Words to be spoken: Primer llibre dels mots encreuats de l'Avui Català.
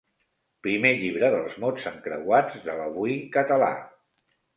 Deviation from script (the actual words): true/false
false